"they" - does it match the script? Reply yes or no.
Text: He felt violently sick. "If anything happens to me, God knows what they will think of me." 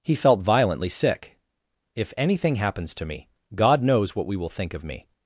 no